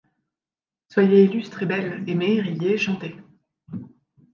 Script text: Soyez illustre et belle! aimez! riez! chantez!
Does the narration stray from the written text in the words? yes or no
no